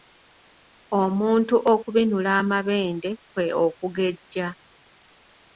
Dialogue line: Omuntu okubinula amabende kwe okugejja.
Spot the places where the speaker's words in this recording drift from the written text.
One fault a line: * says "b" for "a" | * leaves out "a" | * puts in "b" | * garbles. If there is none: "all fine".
all fine